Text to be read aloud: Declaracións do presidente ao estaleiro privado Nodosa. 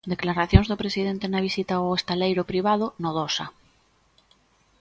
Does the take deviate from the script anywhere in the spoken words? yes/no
yes